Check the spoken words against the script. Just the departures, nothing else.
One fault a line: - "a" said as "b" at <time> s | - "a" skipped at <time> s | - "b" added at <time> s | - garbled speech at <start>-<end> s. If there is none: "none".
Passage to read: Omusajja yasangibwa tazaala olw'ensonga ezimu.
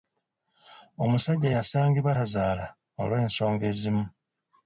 none